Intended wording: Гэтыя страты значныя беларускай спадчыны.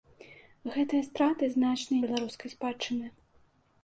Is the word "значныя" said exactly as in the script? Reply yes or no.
yes